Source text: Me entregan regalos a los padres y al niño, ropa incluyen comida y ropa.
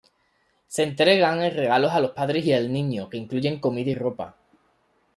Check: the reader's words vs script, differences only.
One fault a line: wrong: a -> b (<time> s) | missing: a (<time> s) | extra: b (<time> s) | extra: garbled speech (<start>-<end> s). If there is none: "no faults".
wrong: Me -> Se (0.7 s)
wrong: ropa -> que (3.1 s)